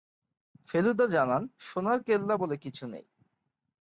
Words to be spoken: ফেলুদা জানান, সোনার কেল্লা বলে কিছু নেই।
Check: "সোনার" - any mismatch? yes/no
no